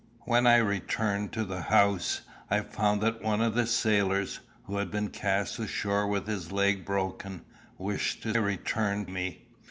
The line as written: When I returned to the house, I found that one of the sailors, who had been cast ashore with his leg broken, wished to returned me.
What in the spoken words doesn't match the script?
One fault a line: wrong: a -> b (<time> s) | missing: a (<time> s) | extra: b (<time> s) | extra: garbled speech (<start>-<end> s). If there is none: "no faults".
no faults